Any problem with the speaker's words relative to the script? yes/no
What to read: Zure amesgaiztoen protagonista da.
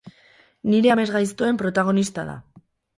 yes